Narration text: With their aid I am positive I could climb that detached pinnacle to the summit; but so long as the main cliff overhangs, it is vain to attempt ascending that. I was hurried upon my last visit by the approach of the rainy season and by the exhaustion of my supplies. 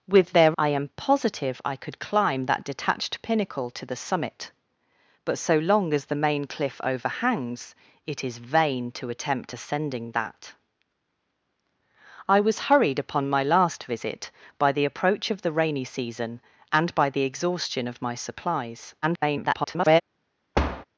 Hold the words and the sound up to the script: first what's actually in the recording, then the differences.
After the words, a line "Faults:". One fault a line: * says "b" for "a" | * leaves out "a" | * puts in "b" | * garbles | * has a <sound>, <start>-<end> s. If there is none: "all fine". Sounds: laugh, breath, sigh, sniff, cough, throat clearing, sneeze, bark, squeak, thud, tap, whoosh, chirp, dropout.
With their I am positive I could climb that detached pinnacle to the summit; but so long as the main cliff overhangs, it is vain to attempt ascending that. I was hurried upon my last visit by the approach of the rainy season and by the exhaustion of my supplies. [garbled]
Faults:
* leaves out "aid"
* garbles
* has a thud, 20.5-20.8 s